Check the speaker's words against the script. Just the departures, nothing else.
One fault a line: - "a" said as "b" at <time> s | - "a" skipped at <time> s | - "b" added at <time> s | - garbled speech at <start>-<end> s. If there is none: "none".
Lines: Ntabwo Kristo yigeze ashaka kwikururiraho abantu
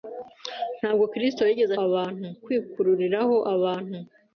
- "ashaka" said as "abantu" at 1.8 s